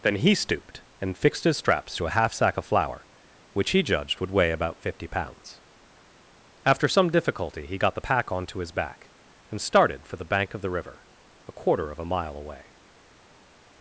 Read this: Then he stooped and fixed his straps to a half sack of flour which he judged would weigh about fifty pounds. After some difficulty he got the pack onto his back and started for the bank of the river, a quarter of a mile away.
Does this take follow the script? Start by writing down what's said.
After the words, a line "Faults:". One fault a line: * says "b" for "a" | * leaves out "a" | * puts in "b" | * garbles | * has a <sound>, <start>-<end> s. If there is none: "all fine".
Then he stooped and fixed his straps to a half sack of flour which he judged would weigh about fifty pounds. After some difficulty he got the pack onto his back and started for the bank of the river, a quarter of a mile away.
Faults:
all fine